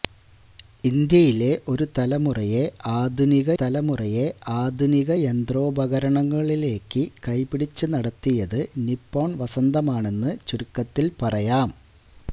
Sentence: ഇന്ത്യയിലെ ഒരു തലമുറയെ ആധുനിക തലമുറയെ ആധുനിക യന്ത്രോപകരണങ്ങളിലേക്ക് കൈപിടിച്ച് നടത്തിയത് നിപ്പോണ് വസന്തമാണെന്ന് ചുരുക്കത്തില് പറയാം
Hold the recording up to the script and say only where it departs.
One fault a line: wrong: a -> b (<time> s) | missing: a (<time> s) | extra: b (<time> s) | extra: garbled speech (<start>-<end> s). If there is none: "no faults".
no faults